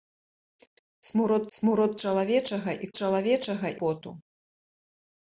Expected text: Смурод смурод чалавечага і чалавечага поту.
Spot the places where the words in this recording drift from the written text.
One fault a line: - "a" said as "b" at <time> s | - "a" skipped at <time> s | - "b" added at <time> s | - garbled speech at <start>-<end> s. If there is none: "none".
none